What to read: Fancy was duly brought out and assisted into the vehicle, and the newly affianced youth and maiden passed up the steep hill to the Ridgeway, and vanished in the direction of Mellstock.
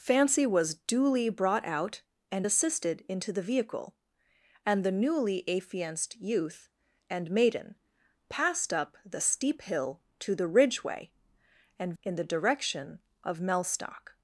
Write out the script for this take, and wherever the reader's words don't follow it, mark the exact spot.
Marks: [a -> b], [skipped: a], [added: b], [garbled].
Fancy was duly brought out and assisted into the vehicle, and the newly affianced youth and maiden passed up the steep hill to the Ridgeway, and [skipped: vanished] in the direction of Mellstock.